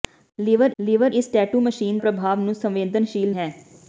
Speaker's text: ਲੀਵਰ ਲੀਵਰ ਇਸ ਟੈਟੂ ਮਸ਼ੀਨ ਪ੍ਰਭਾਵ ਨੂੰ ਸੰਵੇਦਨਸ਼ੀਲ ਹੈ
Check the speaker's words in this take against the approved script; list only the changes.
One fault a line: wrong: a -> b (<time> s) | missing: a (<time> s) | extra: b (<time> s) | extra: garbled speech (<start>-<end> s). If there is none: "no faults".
no faults